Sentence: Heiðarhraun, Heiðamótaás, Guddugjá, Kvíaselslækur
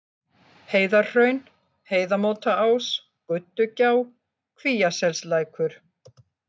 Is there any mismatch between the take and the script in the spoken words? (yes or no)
no